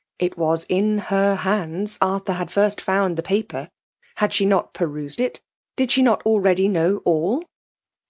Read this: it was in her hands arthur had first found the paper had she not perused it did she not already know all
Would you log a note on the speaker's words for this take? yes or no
no